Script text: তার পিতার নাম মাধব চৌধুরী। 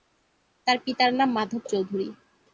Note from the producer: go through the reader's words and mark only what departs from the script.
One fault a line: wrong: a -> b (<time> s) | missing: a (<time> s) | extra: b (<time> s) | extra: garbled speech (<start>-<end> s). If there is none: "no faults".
no faults